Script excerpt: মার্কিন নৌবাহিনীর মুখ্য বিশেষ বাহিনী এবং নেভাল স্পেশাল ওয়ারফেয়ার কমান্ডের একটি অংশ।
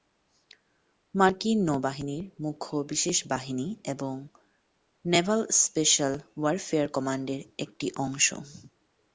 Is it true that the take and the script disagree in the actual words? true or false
false